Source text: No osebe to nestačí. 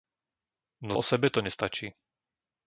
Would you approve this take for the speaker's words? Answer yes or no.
yes